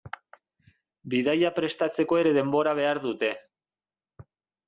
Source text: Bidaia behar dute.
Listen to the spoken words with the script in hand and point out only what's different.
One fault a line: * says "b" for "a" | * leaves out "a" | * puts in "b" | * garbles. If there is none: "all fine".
* puts in "prestatzeko ere denbora"